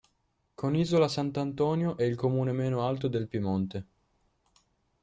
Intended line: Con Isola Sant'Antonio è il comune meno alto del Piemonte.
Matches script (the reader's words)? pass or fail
pass